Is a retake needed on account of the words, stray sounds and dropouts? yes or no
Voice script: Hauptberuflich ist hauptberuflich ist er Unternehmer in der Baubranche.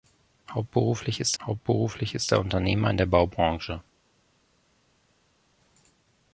no